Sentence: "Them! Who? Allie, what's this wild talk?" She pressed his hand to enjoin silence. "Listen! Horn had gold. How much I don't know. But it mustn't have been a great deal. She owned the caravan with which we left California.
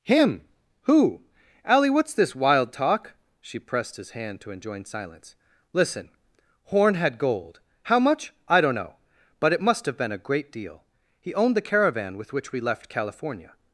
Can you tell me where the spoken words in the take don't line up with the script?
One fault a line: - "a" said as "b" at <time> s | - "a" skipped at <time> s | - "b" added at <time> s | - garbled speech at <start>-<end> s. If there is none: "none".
- "Them" said as "Him" at 0.0 s
- "mustn't" said as "must" at 9.6 s
- "She" said as "He" at 11.2 s